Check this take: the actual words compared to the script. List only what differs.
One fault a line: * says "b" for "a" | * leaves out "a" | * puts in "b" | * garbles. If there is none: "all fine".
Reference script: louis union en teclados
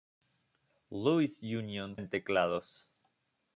all fine